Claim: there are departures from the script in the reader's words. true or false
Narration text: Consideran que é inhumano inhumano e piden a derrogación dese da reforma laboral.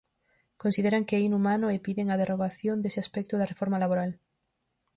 true